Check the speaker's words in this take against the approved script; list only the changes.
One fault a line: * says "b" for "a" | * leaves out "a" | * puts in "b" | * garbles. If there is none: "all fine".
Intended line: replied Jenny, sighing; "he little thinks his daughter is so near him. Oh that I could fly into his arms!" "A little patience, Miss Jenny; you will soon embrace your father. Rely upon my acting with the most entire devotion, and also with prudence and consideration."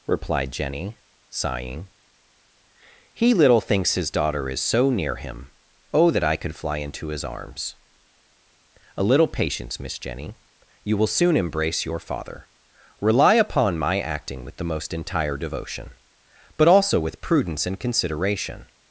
* says "but" for "and"